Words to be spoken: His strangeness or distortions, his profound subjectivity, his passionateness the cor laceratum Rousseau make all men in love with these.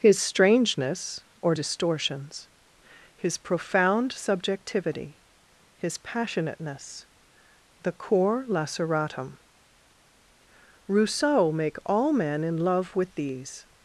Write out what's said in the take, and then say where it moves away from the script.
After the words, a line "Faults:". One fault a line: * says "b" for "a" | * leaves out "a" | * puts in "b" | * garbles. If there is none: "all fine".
His strangeness or distortions, his profound subjectivity, his passionateness the cor laceratum Rousseau make all men in love with these.
Faults:
all fine